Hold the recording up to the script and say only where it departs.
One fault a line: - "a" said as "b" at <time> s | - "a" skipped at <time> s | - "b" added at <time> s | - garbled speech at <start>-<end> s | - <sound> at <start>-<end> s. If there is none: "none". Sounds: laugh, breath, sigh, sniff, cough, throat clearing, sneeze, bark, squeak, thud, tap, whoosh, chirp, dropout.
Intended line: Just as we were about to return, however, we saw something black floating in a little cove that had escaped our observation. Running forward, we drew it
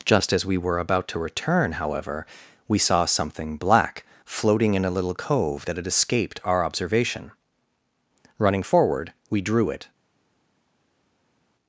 none